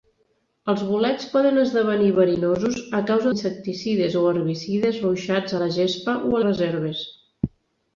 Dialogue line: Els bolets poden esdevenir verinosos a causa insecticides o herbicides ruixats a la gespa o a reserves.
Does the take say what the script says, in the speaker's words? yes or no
yes